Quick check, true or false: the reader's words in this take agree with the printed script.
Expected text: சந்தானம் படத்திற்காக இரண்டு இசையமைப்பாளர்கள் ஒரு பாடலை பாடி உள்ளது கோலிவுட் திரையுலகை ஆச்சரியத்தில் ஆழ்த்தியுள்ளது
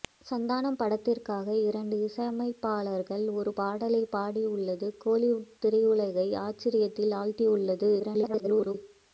false